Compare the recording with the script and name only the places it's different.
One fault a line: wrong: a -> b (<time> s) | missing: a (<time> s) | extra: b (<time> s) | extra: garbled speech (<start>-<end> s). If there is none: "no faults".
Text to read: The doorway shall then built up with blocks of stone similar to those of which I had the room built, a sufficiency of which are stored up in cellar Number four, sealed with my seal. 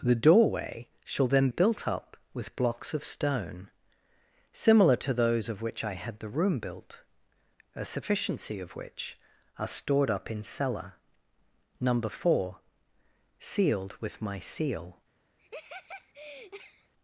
no faults